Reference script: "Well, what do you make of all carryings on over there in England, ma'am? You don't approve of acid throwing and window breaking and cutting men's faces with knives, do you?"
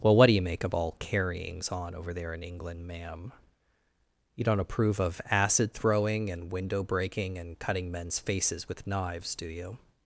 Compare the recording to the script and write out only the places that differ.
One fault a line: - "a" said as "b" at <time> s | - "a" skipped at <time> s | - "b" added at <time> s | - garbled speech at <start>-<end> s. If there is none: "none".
none